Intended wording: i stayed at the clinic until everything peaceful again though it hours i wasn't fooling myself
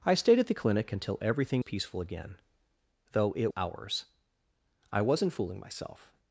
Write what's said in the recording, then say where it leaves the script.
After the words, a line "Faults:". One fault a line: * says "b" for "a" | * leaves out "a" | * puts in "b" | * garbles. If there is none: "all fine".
i stayed at the clinic until everything peaceful again though it hours i wasn't fooling myself
Faults:
all fine